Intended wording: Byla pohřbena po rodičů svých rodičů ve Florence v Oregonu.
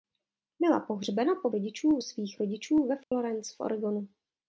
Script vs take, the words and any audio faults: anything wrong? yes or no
yes